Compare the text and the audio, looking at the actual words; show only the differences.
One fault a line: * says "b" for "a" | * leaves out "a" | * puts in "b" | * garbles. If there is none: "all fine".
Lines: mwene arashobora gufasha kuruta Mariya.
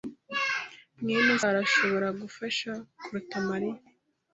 all fine